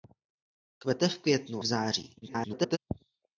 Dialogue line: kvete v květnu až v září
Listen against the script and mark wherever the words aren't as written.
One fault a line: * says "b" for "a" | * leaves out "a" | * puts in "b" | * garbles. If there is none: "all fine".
* leaves out "až"
* garbles